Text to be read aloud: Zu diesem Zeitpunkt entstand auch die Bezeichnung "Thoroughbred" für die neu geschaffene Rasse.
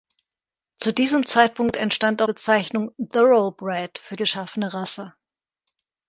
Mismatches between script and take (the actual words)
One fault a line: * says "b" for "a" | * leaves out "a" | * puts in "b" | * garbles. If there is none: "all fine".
* leaves out "auch die"
* leaves out "die neu"